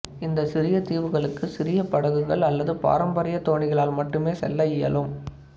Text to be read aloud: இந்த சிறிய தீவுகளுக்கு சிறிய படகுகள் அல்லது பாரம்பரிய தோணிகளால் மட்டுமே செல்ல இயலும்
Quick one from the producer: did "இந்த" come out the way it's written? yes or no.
yes